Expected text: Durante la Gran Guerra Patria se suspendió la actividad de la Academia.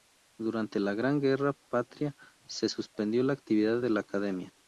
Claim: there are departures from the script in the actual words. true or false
false